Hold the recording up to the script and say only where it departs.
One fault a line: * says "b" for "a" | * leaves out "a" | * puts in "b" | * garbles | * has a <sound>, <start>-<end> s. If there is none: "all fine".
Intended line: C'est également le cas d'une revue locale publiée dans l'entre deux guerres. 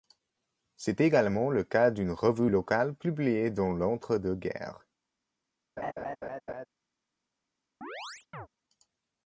* has a laugh, 5.8-6.7 s
* has a chirp, 7.8-8.5 s